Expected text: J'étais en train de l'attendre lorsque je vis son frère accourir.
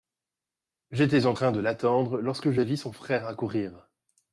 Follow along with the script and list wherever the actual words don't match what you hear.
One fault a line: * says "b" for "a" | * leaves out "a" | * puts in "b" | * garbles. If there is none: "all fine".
all fine